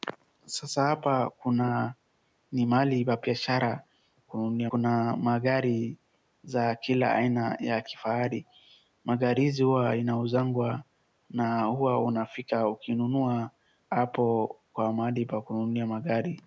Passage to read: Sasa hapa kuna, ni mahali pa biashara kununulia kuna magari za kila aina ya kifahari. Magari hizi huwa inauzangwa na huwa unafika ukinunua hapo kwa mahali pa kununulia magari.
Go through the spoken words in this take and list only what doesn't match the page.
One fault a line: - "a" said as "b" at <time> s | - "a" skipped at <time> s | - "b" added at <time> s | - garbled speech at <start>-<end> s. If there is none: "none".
none